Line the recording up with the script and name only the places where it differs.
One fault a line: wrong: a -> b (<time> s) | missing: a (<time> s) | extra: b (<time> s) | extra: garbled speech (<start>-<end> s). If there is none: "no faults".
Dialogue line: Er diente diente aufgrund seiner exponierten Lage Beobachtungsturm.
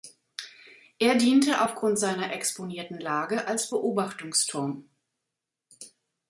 missing: diente (1.6 s)
extra: als (3.5 s)